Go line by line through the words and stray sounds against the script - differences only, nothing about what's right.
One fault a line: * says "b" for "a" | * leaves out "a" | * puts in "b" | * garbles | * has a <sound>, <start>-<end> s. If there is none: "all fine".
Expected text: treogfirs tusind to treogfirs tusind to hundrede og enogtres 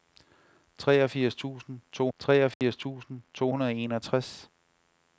* has a dropout, 2.5-2.6 s